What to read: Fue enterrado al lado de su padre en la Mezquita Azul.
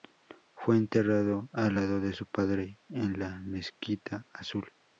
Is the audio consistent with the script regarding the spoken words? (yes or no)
yes